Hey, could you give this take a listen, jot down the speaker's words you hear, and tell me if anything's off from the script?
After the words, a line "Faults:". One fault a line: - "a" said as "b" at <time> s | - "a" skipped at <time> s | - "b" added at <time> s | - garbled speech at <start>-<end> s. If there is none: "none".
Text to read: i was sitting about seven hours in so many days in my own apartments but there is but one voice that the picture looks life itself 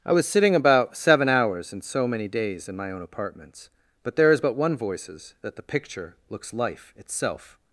i was sitting about seven hours in so many days in my own apartments but there is but one voices that the picture looks life itself
Faults:
- "voice" said as "voices" at 4.8 s